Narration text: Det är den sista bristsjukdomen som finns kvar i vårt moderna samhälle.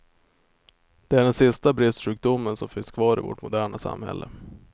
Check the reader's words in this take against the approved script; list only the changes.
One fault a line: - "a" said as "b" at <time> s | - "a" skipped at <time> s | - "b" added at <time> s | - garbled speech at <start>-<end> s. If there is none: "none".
none